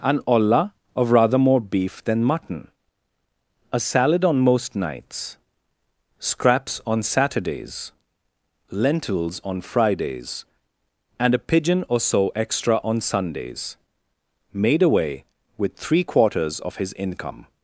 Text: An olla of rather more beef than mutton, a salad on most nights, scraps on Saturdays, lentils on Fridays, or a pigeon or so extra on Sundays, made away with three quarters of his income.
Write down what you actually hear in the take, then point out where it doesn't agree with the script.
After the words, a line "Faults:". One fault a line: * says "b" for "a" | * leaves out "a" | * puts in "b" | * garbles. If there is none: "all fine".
An olla of rather more beef than mutton, a salad on most nights, scraps on Saturdays, lentils on Fridays, and a pigeon or so extra on Sundays, made away with three quarters of his income.
Faults:
* says "and" for "or"